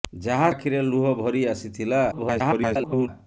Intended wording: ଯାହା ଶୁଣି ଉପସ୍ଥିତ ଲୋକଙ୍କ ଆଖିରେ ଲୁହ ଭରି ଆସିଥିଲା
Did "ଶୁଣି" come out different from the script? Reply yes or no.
yes